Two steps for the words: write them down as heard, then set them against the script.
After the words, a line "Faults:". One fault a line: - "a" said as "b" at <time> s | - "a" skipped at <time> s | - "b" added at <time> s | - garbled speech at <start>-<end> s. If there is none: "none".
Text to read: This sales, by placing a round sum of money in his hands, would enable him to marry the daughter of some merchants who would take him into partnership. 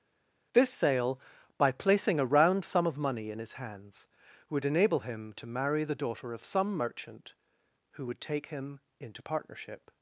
This sale, by placing a round sum of money in his hands, would enable him to marry the daughter of some merchant who would take him into partnership.
Faults:
- "sales" said as "sale" at 0.7 s
- "merchants" said as "merchant" at 6.8 s